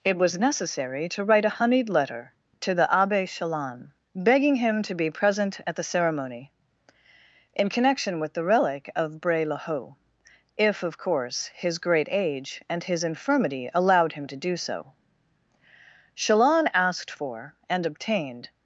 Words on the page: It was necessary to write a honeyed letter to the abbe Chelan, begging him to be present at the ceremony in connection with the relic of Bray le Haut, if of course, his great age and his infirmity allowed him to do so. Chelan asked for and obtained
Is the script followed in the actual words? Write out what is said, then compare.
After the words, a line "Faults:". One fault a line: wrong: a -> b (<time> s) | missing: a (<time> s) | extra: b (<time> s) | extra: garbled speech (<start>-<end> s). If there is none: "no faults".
It was necessary to write a honeyed letter to the abbe Chelan, begging him to be present at the ceremony in connection with the relic of Bray le Haut, if of course, his great age and his infirmity allowed him to do so. Chelan asked for and obtained
Faults:
no faults